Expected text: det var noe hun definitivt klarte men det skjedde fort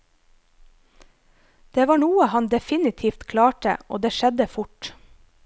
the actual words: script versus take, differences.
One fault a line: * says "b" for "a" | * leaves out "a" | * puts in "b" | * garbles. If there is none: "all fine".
* says "han" for "hun"
* says "og" for "men"